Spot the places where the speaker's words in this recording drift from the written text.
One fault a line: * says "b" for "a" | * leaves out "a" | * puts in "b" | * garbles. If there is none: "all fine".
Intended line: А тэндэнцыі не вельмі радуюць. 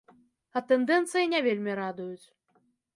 all fine